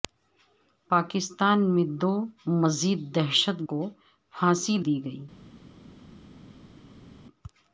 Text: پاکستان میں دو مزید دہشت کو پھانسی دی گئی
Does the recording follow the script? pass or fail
pass